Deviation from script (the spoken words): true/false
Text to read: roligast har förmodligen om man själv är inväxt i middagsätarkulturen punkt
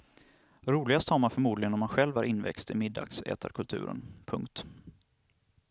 true